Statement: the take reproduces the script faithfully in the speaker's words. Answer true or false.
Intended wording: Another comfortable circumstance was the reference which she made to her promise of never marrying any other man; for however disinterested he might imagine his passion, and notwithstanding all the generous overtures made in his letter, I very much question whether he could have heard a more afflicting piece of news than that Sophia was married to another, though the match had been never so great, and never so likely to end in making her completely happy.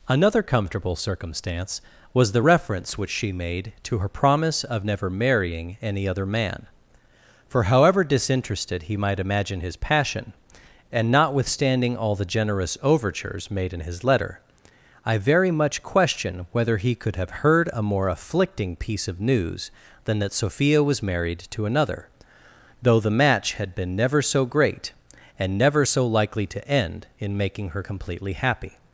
true